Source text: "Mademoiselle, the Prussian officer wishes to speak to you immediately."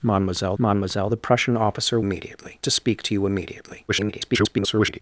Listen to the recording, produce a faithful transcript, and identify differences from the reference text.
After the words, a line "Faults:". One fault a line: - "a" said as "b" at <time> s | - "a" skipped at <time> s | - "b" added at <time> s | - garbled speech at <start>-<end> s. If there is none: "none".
"Mademoiselle mademoiselle, the Prussian officer immediately to speak to you immediately." [garbled]
Faults:
- "mademoiselle" added at 0.6 s
- "wishes" said as "immediately" at 2.0 s
- garbled speech at 3.9-5.0 s